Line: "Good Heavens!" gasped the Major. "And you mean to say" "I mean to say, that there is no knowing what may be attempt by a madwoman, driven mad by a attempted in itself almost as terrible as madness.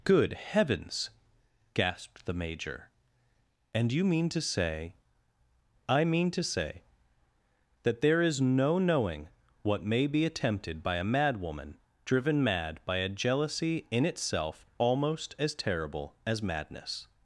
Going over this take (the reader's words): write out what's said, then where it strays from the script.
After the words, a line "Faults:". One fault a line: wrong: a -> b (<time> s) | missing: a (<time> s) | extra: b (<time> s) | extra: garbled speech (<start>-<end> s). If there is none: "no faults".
"Good Heavens!" gasped the Major. "And you mean to say" "I mean to say, that there is no knowing what may be attempted by a madwoman, driven mad by a jealousy in itself almost as terrible as madness.
Faults:
wrong: attempt -> attempted (10.2 s)
wrong: attempted -> jealousy (13.1 s)